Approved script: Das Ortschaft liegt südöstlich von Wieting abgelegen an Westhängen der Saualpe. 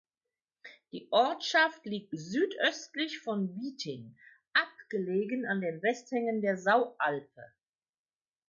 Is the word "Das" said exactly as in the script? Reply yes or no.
no